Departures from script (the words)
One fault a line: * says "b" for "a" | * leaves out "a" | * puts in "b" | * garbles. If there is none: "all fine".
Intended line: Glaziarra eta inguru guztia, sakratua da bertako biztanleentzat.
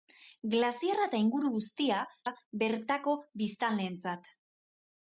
* leaves out "sakratua"